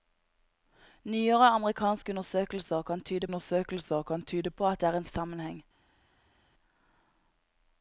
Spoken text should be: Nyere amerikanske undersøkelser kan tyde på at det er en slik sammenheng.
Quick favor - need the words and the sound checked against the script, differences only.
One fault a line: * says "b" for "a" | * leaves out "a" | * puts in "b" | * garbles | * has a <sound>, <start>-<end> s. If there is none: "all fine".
* puts in "undersøkelser kan tyde"
* leaves out "slik"